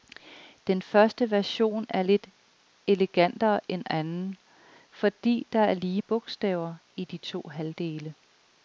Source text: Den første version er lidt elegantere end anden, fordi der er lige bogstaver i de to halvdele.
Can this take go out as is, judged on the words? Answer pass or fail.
pass